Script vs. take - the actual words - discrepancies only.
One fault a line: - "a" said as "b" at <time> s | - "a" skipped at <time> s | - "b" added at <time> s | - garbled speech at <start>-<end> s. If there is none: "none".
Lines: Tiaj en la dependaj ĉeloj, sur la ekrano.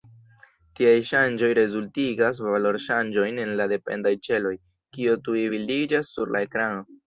- "ŝanĝoj rezultigas valorŝanĝojn" added at 1.1 s
- "kio tuj bildiĝas" added at 5.0 s